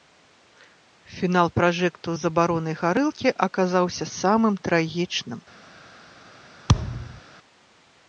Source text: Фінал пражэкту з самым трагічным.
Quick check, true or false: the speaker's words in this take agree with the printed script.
false